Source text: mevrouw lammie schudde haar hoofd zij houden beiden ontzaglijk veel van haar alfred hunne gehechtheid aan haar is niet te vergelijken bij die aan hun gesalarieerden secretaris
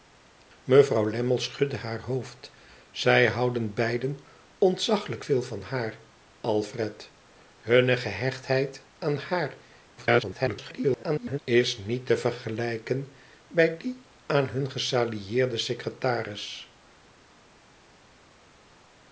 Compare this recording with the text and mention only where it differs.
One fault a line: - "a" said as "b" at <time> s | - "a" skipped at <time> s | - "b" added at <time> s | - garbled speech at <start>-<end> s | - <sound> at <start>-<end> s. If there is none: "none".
- garbled speech at 10.0-11.4 s